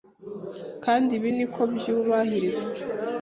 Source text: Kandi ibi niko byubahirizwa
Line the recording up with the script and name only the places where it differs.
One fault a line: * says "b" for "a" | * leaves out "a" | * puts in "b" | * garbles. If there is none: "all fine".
all fine